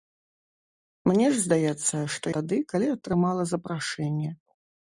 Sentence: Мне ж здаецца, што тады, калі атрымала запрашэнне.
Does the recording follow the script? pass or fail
pass